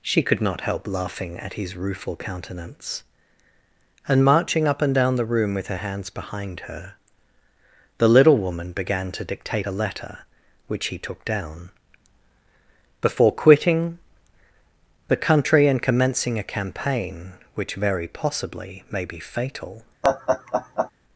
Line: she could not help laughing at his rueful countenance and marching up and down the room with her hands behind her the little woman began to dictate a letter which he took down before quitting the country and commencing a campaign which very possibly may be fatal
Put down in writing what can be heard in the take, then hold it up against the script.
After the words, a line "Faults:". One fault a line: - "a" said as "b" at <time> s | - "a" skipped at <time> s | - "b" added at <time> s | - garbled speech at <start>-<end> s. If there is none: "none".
she could not help laughing at his rueful countenance and marching up and down the room with her hands behind her the little woman began to dictate a letter which he took down before quitting the country and commencing a campaign which very possibly may be fatal
Faults:
none